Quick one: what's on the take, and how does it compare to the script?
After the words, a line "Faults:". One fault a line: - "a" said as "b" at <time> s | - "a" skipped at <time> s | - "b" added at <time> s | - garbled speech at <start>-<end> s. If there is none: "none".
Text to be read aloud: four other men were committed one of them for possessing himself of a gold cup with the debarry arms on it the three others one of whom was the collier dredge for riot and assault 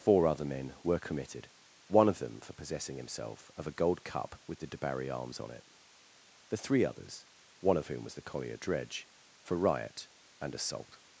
four other men were committed one of them for possessing himself of a gold cup with the debarry arms on it the three others one of whom was the collier dredge for riot and assault
Faults:
none